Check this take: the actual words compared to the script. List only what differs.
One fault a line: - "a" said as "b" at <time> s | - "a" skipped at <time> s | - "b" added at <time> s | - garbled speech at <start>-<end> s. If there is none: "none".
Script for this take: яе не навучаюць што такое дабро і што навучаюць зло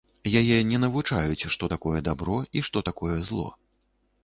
- "навучаюць" said as "такое" at 2.9 s